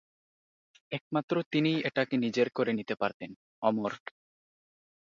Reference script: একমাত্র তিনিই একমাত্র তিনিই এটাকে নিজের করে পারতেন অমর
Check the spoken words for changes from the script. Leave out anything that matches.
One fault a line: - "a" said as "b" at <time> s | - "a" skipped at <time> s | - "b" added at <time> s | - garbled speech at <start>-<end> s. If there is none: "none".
- "একমাত্র তিনিই" skipped at 1.8 s
- "নিতে" added at 2.7 s